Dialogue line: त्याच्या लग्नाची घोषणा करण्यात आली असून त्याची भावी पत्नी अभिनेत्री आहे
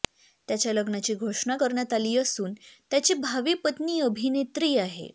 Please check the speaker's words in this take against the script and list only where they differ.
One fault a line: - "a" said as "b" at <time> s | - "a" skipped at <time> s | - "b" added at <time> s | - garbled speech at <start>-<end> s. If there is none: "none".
none